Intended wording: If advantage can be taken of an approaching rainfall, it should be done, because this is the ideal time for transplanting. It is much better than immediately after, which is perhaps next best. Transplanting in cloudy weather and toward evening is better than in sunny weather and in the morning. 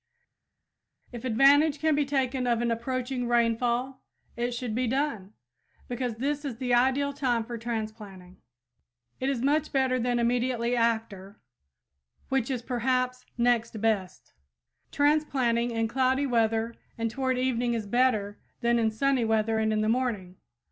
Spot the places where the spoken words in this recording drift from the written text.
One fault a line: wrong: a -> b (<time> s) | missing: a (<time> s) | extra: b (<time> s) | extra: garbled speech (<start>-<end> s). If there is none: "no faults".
no faults